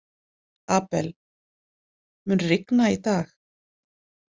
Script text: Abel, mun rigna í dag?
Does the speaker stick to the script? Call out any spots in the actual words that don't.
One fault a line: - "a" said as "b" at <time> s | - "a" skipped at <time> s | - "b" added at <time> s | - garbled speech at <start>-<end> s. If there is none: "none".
none